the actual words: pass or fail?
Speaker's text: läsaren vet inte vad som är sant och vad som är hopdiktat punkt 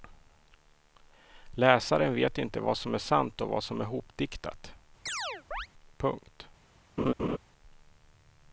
pass